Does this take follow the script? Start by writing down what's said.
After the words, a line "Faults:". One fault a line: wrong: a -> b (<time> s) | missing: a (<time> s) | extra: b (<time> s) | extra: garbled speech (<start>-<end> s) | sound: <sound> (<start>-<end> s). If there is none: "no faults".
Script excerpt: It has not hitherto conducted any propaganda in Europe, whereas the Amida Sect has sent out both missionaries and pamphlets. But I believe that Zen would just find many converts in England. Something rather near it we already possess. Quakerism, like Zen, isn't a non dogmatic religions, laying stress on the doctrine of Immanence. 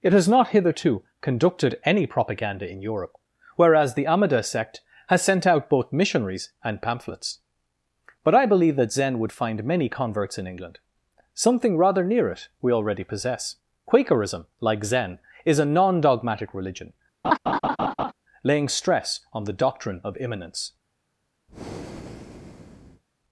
It has not hitherto conducted any propaganda in Europe, whereas the Amida Sect has sent out both missionaries and pamphlets. But I believe that Zen would find many converts in England. Something rather near it we already possess. Quakerism, like Zen, is a non dogmatic religion, laying stress on the doctrine of Immanence.
Faults:
missing: just (9.3 s)
wrong: isn't -> is (15.4 s)
wrong: religions -> religion (16.5 s)
sound: laugh (17.2-18.1 s)
sound: breath (21.5-23.0 s)